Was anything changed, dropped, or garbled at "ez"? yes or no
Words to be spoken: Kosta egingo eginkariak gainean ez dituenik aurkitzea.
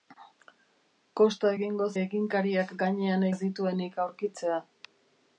no